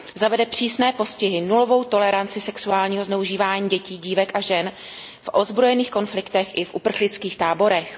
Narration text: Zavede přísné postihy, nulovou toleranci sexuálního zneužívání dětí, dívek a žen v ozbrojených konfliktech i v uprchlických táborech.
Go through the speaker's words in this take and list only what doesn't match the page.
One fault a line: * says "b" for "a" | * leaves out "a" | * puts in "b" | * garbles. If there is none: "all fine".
all fine